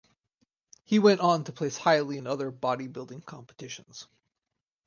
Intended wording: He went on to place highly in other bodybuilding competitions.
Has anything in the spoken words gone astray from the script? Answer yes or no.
no